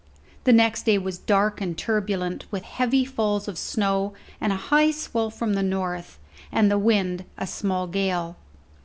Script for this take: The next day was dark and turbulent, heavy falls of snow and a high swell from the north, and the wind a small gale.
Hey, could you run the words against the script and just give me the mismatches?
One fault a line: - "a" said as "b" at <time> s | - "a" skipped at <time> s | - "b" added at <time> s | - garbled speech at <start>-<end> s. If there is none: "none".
- "with" added at 2.5 s